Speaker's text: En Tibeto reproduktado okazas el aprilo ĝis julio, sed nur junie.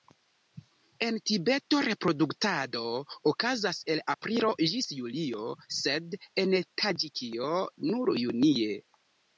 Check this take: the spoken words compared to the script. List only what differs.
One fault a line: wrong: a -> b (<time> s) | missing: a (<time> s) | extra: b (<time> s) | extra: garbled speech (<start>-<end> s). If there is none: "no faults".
extra: en Taĝikio (6.5 s)